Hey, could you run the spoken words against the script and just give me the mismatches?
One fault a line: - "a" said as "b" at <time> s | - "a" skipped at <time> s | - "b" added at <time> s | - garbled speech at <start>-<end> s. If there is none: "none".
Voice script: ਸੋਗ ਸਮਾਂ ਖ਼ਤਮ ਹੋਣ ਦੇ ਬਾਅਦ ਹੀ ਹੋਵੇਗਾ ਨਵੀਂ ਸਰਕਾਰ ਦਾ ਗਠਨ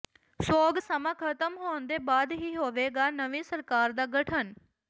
none